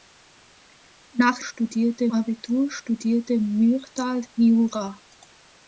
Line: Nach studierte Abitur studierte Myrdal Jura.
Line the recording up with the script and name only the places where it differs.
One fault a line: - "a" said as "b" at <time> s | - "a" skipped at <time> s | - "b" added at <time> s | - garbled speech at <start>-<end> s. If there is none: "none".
none